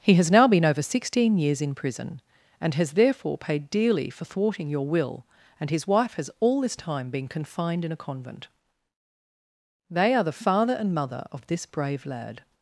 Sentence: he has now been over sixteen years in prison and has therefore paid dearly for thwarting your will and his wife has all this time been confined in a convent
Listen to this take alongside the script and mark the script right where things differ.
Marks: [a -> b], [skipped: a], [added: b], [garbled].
he has now been over sixteen years in prison and has therefore paid dearly for thwarting your will and his wife has all this time been confined in a convent [added: they are the father and mother of this brave lad]